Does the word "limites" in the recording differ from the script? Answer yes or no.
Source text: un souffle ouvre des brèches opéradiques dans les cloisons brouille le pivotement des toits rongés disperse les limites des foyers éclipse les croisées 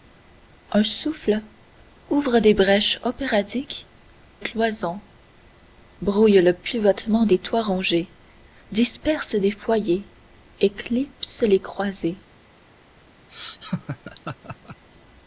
yes